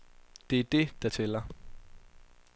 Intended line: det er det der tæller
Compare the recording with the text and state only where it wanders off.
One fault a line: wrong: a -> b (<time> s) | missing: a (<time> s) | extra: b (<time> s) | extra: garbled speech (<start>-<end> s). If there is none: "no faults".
no faults